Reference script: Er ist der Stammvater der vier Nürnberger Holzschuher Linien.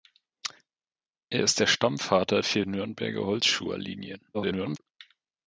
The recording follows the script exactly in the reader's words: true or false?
false